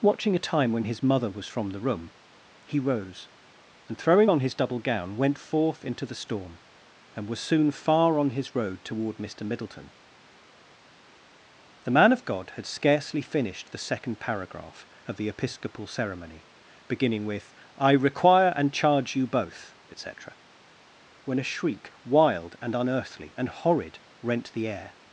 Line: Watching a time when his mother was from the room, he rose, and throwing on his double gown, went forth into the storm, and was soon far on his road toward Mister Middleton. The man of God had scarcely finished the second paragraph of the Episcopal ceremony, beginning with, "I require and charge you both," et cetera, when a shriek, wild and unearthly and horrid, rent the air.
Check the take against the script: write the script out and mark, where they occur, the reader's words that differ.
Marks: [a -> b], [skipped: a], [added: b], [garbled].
Watching a time when his mother was from the room, he rose, and throwing on his double gown, went forth into the storm, and was soon far on his road toward Mister Middleton. The man of God had scarcely finished the second paragraph of the Episcopal ceremony, beginning with, "I require and charge you both," et cetera, when a shriek, wild and unearthly and horrid, rent the air.